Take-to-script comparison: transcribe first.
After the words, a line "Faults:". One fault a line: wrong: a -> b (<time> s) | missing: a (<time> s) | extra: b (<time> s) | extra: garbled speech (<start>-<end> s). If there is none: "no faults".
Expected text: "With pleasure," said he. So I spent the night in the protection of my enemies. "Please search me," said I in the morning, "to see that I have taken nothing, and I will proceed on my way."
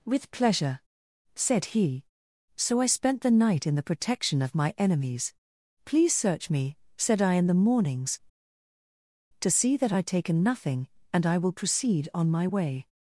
"With pleasure," said he. So I spent the night in the protection of my enemies. "Please search me," said I in the mornings, "to see that I taken nothing, and I will proceed on my way."
Faults:
wrong: morning -> mornings (7.5 s)
missing: have (10.0 s)